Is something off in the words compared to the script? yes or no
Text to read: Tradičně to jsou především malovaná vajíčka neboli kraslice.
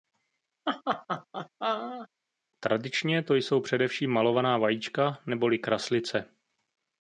no